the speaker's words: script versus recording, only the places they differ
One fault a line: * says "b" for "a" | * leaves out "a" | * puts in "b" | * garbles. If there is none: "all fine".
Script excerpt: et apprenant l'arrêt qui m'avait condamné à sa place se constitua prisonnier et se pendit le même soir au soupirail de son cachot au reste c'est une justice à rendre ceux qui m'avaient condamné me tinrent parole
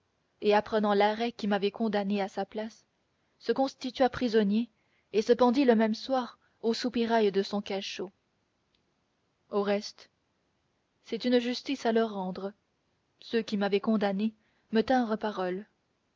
* puts in "leur"